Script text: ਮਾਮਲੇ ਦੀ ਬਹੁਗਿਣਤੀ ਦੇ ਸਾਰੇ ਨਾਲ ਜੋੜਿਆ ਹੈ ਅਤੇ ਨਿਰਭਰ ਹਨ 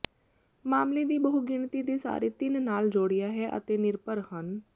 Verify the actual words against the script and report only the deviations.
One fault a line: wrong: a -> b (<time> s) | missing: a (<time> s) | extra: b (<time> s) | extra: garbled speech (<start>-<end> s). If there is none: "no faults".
extra: ਤਿੰਨ (2.3 s)